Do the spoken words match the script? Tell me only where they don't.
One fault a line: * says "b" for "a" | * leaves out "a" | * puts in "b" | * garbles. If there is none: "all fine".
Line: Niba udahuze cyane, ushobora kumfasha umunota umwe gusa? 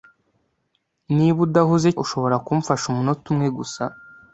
* leaves out "cyane"